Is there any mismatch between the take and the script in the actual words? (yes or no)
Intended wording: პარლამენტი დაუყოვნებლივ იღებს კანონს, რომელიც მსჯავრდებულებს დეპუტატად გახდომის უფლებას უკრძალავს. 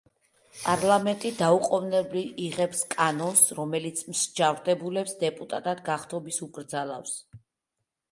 yes